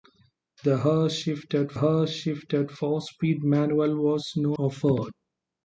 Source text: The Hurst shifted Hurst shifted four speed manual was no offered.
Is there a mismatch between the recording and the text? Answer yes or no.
no